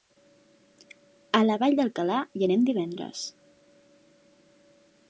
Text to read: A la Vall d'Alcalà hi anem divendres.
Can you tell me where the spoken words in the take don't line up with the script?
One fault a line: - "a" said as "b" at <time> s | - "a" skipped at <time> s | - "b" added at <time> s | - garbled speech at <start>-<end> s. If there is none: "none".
none